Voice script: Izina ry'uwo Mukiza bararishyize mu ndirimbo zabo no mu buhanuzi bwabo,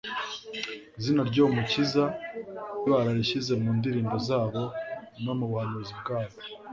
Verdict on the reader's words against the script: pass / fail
pass